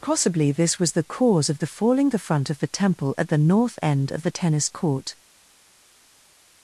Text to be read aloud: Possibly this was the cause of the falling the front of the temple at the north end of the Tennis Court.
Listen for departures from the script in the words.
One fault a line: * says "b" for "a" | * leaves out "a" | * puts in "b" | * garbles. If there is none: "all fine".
all fine